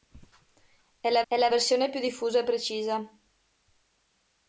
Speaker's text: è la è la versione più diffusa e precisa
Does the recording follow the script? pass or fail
pass